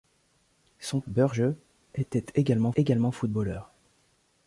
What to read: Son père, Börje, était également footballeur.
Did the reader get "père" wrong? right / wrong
wrong